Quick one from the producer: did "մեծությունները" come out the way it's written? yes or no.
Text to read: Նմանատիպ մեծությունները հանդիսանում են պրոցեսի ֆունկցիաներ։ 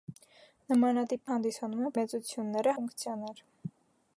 no